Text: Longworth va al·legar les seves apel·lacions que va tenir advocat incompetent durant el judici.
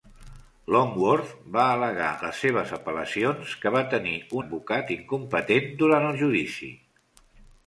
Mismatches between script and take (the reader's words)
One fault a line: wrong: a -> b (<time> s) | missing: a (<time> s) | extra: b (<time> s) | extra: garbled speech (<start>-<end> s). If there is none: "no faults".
no faults